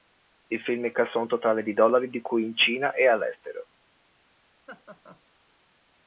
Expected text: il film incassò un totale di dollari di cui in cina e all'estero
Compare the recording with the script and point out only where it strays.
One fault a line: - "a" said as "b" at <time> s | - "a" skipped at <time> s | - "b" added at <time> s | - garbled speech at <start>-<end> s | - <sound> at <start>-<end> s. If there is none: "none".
- laugh at 4.7-5.2 s